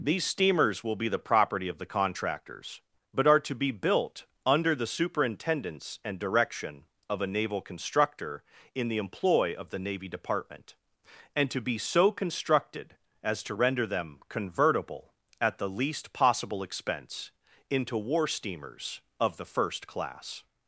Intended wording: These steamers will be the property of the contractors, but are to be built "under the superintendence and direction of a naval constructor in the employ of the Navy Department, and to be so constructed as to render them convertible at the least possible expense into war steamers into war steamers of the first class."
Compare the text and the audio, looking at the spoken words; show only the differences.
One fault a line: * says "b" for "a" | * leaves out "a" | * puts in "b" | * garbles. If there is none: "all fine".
* leaves out "into war steamers"